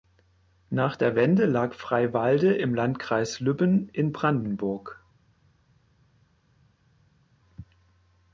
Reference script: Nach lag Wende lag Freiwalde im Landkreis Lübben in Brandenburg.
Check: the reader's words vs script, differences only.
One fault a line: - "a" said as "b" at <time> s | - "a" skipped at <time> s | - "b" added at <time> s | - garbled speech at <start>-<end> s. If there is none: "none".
- "lag" said as "der" at 0.9 s